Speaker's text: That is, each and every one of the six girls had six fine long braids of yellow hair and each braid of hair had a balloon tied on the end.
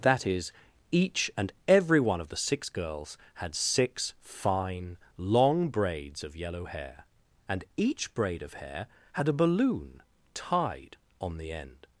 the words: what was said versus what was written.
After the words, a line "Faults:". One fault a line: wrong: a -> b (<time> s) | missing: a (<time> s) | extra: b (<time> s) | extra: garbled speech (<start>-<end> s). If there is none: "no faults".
That is, each and every one of the six girls had six fine long braids of yellow hair and each braid of hair had a balloon tied on the end.
Faults:
no faults